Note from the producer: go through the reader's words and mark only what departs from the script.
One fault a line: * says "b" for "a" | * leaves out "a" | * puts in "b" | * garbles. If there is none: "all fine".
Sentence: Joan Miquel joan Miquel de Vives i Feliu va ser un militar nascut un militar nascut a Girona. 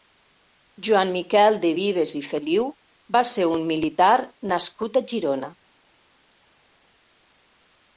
* leaves out "joan Miquel"
* leaves out "un militar nascut"